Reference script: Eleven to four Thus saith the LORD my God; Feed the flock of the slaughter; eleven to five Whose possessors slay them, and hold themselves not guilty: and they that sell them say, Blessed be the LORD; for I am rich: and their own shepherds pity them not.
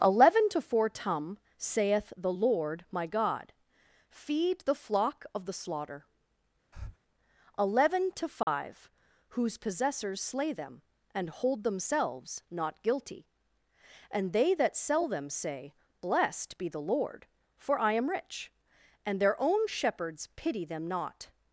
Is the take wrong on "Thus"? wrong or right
wrong